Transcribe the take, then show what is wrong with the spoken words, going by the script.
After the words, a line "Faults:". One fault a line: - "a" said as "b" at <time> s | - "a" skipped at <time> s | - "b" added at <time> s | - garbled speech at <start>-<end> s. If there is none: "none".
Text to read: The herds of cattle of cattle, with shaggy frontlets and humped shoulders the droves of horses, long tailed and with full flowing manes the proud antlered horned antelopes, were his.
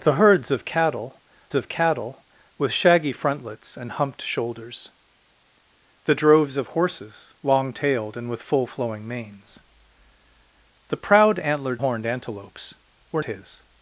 The herds of cattle of cattle, with shaggy frontlets and humped shoulders the droves of horses, long tailed and with full flowing manes the proud antlered horned antelopes, were his.
Faults:
none